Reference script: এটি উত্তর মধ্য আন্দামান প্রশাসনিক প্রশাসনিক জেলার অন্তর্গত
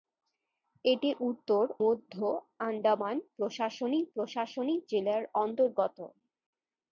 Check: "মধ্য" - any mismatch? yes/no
no